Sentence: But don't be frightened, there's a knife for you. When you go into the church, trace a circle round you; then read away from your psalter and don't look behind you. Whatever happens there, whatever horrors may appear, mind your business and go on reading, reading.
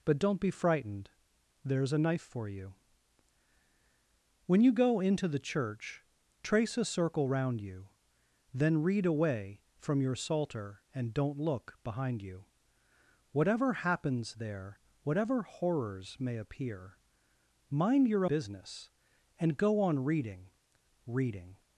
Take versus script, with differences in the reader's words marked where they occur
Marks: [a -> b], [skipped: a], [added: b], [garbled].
But don't be frightened, there's a knife for you. When you go into the church, trace a circle round you; then read away from your psalter and don't look behind you. Whatever happens there, whatever horrors may appear, mind your business and go on reading, reading.